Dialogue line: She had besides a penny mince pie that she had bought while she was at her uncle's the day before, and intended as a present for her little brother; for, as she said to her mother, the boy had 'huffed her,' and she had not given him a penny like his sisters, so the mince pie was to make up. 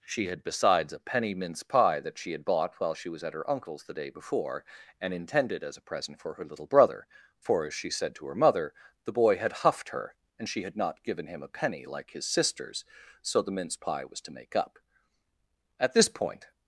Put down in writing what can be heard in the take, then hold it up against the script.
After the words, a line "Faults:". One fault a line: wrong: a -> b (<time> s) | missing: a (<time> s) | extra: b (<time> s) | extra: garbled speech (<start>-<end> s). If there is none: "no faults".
She had besides a penny mince pie that she had bought while she was at her uncle's the day before, and intended as a present for her little brother; for, as she said to her mother, the boy had 'huffed her,' and she had not given him a penny like his sisters, so the mince pie was to make up. At this point
Faults:
extra: At this point (15.8 s)